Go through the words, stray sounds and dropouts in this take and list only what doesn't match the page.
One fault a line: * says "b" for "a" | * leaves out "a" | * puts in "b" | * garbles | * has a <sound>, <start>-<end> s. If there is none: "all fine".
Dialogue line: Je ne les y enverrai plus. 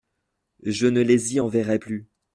all fine